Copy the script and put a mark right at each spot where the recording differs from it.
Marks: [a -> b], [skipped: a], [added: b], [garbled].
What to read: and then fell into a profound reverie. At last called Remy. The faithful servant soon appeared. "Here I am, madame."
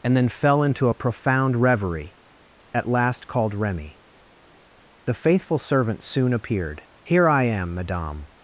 and then fell into a profound reverie. At last called Remy. The faithful servant soon appeared. "Here I am, madame."